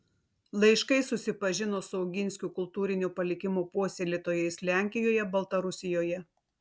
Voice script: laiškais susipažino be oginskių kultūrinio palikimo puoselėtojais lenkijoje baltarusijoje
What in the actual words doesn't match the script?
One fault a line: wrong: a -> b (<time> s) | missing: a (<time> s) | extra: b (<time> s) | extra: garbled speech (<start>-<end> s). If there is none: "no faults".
wrong: be -> su (1.9 s)